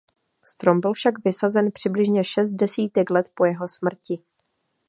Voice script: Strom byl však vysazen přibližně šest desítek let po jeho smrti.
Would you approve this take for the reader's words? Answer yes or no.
yes